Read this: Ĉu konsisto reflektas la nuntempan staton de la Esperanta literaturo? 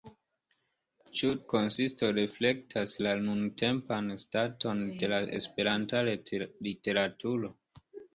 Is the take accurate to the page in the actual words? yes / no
yes